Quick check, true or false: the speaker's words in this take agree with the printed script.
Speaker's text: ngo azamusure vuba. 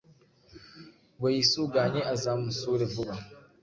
false